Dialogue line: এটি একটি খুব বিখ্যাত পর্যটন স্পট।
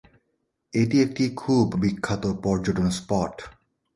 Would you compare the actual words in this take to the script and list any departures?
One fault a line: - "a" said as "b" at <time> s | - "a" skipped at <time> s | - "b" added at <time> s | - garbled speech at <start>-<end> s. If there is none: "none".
none